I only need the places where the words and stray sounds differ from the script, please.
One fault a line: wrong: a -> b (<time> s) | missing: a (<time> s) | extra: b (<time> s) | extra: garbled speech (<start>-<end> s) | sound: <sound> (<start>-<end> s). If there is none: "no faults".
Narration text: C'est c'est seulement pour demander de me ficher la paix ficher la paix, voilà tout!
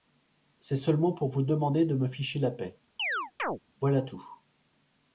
missing: c'est (0.8 s)
extra: vous (1.3 s)
missing: ficher la paix (2.8 s)
sound: chirp (3.0-3.6 s)